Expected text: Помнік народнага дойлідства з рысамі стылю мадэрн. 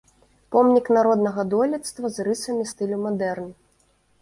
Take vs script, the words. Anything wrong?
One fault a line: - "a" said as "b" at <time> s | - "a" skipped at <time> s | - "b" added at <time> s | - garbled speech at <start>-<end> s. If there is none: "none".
none